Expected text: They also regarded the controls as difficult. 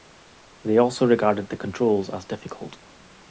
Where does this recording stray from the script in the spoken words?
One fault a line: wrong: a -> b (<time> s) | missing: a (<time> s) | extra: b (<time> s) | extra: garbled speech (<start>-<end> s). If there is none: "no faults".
no faults